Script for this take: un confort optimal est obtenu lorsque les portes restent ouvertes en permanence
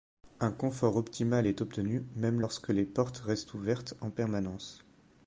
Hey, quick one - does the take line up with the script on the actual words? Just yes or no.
no